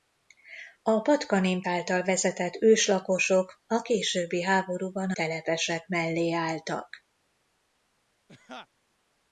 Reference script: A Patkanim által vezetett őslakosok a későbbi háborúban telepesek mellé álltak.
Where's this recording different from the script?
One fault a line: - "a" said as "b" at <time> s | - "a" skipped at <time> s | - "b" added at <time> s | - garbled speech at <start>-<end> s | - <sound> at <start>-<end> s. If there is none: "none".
- laugh at 8.3-8.7 s